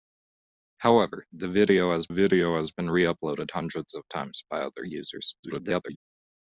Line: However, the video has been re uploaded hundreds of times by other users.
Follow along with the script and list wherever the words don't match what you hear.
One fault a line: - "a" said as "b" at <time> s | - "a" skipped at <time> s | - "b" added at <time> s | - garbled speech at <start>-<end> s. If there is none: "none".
- "video has" added at 2.1 s
- garbled speech at 5.4-6.0 s